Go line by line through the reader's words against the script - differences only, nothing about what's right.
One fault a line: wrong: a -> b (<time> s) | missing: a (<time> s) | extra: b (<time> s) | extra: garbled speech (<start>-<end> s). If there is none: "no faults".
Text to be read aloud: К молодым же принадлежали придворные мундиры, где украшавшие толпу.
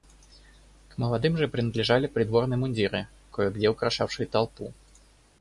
extra: кое (3.3 s)